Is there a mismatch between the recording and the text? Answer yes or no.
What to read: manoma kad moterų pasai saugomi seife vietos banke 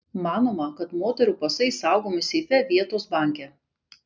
no